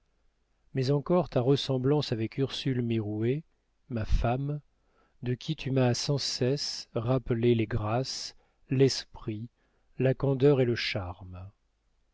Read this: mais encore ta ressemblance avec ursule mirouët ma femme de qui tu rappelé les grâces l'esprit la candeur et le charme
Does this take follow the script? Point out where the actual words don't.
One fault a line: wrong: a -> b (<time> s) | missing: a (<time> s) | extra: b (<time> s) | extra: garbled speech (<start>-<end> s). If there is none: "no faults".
extra: m'as sans cesse (5.7 s)